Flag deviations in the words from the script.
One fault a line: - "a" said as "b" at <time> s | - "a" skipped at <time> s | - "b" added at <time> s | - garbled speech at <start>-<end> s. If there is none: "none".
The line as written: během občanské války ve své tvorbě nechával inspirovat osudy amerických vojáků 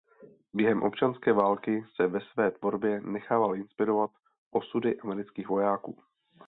- "se" added at 1.9 s